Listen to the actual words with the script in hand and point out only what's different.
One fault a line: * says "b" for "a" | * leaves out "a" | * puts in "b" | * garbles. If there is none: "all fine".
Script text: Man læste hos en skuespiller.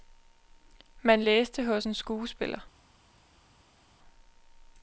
all fine